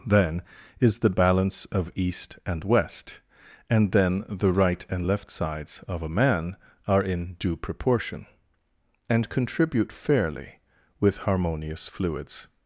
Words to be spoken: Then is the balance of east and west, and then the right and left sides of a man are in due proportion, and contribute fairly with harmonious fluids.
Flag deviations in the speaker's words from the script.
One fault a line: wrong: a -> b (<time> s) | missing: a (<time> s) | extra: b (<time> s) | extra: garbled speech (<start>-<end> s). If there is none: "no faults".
no faults